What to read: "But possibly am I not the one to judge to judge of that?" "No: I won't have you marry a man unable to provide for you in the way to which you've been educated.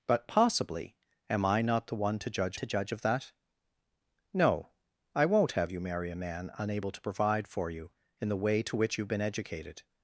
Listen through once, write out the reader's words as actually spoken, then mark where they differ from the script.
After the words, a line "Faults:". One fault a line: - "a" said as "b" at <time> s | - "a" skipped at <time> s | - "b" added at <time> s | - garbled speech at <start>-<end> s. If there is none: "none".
"But possibly am I not the one to judge to judge of that?" "No: I won't have you marry a man unable to provide for you in the way to which you've been educated.
Faults:
none